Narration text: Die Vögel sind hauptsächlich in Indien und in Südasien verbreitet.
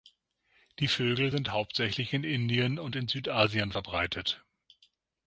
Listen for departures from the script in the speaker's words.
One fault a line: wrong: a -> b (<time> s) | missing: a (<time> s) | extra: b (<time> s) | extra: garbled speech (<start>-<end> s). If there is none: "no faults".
no faults